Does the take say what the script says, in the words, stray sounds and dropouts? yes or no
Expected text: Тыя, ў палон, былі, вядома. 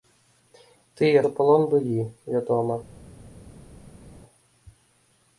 yes